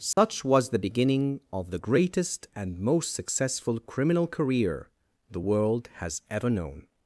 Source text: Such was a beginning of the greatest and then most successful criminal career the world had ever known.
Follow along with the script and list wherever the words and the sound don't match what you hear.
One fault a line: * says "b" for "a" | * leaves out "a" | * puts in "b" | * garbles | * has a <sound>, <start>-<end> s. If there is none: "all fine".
* has a dropout, 0.1-0.2 s
* says "the" for "a"
* leaves out "then"
* says "has" for "had"